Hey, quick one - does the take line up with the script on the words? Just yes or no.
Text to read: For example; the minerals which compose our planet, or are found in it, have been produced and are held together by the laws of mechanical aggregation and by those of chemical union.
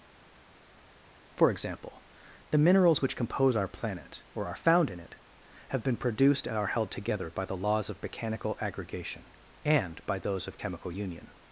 yes